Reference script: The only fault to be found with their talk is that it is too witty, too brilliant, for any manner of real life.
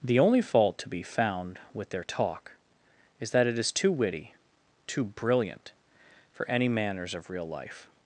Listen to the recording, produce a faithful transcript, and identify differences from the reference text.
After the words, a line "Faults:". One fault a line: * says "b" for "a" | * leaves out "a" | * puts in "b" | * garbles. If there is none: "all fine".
The only fault to be found with their talk is that it is too witty, too brilliant, for any manners of real life.
Faults:
* says "manners" for "manner"